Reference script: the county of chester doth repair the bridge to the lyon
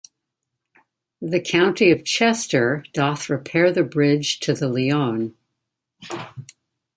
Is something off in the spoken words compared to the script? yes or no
no